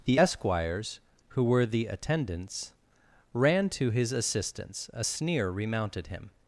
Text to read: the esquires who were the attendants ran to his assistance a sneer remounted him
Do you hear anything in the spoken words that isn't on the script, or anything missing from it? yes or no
no